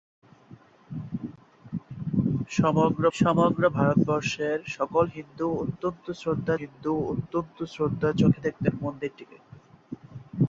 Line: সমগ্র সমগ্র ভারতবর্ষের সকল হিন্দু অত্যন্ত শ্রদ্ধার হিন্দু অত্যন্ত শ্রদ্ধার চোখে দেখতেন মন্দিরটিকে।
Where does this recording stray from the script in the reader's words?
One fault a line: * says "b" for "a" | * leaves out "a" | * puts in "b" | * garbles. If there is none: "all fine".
all fine